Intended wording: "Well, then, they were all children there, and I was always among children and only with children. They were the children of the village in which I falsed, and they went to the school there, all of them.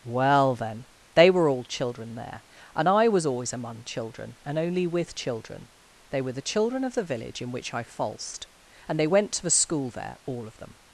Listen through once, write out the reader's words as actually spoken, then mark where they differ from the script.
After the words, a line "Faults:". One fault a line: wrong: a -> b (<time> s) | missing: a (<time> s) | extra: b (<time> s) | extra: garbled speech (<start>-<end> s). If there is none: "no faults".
"Well, then, they were all children there, and I was always among children and only with children. They were the children of the village in which I falsed, and they went to the school there, all of them.
Faults:
no faults